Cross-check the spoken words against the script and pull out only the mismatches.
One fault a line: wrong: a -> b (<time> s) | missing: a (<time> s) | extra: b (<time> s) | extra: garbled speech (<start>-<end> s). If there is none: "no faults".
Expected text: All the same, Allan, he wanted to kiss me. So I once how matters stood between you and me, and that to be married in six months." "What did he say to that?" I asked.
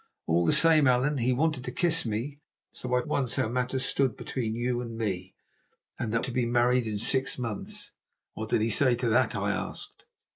no faults